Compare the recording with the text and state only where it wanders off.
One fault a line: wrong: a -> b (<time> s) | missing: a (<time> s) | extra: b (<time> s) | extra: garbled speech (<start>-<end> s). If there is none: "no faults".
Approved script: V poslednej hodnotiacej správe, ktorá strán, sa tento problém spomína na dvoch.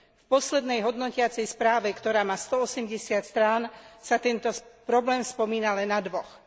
extra: má stoosemdesiat (2.2 s)
extra: len (5.8 s)